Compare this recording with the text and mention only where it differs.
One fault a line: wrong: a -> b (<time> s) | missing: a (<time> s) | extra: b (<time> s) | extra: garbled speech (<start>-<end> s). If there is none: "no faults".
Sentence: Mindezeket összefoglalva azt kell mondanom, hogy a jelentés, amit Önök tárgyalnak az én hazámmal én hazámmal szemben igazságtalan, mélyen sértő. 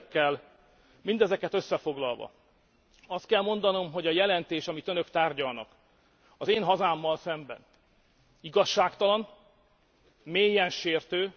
missing: én hazámmal (7.2 s)